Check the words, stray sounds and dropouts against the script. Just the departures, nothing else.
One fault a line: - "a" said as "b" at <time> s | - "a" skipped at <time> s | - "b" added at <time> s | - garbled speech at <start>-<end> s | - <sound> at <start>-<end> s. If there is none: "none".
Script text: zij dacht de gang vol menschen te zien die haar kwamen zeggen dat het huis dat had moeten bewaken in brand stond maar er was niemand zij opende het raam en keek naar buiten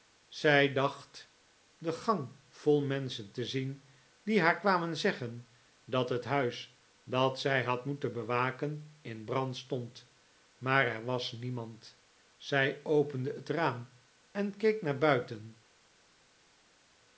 - "zij" added at 7.4 s